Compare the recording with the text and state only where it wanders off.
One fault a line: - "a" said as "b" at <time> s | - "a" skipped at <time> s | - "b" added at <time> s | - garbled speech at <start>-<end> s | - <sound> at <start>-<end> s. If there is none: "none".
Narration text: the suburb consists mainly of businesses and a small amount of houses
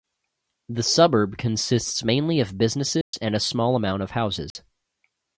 - dropout at 3.0-3.1 s
- dropout at 4.5-4.6 s